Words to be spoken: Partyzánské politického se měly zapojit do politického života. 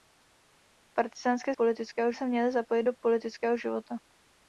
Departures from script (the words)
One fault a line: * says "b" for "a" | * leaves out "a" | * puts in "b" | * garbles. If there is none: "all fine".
all fine